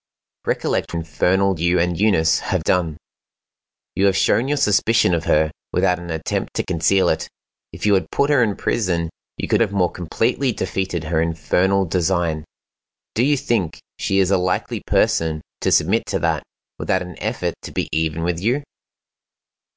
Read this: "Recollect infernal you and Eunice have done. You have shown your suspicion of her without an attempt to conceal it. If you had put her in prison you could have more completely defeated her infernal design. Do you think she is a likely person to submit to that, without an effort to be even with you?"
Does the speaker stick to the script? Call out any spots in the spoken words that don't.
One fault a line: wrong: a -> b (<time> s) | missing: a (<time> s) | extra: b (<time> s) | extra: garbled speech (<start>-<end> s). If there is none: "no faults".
no faults